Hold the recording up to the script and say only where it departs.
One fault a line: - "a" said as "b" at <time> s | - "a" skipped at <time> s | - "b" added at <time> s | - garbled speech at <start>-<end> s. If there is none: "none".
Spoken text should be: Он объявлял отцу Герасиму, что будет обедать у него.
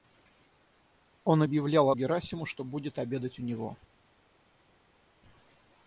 - "отцу" skipped at 1.9 s